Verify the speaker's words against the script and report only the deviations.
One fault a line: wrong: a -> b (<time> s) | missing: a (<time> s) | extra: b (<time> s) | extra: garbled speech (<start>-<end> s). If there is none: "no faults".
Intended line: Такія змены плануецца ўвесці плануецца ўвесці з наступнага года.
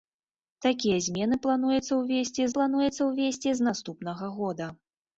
no faults